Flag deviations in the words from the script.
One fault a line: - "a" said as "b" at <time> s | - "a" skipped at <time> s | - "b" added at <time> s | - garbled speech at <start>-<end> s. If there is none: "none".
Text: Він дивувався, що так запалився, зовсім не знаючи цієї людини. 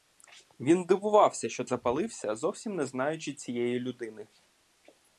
- "так" skipped at 1.6 s